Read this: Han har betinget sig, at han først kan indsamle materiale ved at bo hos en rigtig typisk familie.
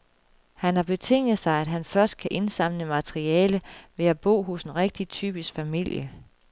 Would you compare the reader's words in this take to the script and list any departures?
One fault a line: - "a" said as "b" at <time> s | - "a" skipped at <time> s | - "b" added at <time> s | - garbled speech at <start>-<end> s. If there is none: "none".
none